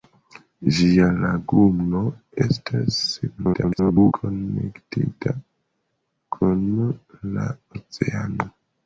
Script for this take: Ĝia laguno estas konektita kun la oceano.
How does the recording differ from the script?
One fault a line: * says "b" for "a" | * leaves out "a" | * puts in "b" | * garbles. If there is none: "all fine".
* garbles